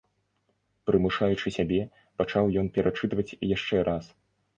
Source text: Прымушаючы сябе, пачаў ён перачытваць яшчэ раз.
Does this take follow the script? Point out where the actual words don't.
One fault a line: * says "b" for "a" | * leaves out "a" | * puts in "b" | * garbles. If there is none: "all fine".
all fine